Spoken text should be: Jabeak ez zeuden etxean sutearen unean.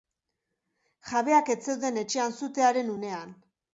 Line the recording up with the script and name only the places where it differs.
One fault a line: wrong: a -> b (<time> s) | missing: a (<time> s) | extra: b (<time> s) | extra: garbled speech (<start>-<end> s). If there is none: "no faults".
no faults